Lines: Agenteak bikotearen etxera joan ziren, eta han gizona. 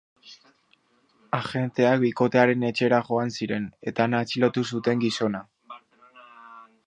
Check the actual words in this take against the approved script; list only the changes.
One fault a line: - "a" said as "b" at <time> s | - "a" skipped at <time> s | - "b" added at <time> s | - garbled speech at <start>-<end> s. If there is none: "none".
- "atxilotu zuten" added at 4.2 s